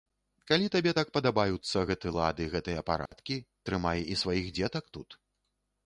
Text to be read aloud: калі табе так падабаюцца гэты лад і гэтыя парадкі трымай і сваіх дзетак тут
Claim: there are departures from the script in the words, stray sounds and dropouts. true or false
true